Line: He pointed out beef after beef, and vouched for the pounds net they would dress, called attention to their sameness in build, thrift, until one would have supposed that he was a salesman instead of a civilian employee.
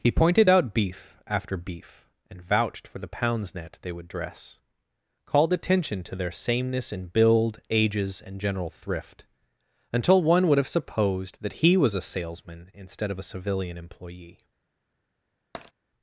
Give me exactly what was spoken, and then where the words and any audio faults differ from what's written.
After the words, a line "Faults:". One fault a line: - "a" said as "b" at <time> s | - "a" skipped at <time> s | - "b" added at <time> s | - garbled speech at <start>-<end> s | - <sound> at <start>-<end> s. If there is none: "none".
He pointed out beef after beef, and vouched for the pounds net they would dress, called attention to their sameness in build, ages, and general thrift, until one would have supposed that he was a salesman instead of a civilian employee.
Faults:
- "ages and general" added at 7.7 s
- tap at 15.5-15.7 s